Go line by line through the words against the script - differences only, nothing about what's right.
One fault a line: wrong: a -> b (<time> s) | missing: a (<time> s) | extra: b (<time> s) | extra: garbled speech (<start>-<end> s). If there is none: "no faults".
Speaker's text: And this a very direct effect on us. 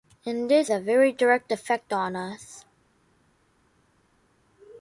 no faults